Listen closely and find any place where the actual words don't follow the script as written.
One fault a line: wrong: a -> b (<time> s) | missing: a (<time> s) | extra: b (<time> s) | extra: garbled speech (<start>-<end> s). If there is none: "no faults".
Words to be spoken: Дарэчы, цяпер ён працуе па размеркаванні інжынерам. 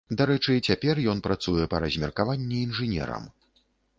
no faults